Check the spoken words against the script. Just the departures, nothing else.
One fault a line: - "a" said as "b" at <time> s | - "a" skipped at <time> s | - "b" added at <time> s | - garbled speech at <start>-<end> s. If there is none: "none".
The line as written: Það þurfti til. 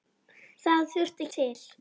none